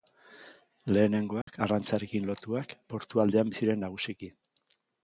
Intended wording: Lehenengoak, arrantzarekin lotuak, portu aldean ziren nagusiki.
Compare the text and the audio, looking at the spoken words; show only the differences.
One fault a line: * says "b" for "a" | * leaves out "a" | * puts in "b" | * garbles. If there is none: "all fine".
all fine